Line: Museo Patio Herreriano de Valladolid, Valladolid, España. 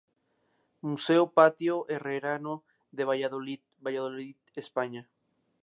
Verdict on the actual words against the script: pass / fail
pass